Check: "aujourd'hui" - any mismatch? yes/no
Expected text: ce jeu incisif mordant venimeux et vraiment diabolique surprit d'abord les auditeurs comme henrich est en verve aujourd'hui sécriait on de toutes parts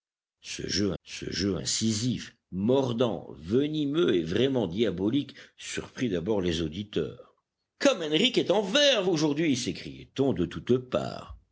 no